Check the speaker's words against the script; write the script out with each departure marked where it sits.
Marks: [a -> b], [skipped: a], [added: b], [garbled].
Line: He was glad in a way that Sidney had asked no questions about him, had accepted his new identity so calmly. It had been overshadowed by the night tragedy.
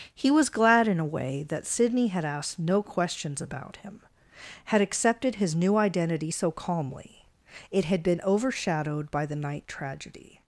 He was glad in a way that Sidney had asked no questions about him, had accepted his new identity so calmly. It had been overshadowed by the night tragedy.